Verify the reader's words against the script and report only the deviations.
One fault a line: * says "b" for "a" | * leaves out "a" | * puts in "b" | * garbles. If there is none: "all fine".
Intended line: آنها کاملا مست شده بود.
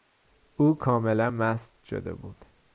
* says "او" for "آنها"